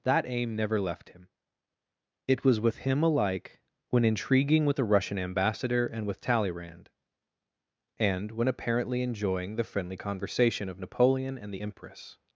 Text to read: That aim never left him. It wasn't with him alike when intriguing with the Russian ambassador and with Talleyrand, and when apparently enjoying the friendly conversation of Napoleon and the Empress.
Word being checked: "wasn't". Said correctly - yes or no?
no